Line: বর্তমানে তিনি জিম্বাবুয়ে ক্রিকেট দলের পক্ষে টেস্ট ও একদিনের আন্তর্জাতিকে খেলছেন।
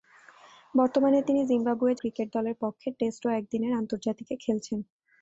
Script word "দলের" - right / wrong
right